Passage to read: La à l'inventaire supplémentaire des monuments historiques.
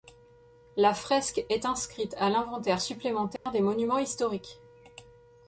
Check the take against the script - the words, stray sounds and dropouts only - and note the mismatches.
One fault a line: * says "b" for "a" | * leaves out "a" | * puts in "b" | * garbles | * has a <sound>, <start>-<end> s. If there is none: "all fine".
* puts in "fresque est inscrite"
* has a dropout, 3.4-3.5 s